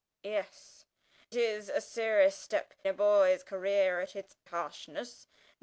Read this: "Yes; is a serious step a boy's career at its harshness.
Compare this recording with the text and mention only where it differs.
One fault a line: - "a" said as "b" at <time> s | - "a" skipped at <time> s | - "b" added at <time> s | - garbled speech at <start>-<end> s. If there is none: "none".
none